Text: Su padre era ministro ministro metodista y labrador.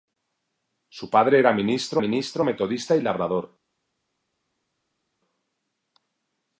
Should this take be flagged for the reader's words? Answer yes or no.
no